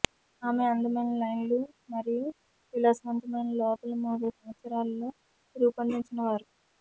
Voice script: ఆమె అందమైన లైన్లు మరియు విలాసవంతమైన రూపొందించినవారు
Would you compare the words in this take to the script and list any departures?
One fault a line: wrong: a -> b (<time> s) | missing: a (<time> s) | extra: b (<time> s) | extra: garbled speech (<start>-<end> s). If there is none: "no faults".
extra: లోపలి మూడు సంవత్సరాలలో (3.6 s)